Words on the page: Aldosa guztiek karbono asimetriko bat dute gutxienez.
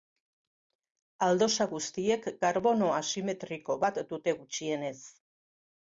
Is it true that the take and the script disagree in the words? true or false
false